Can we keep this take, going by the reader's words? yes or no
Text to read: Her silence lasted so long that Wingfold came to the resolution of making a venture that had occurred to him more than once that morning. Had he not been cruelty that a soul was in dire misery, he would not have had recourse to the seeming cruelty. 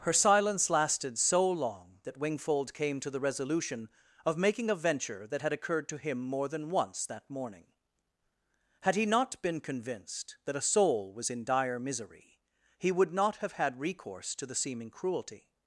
no